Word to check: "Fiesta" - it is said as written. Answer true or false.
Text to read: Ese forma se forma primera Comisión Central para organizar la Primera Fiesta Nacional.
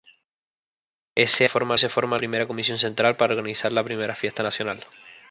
true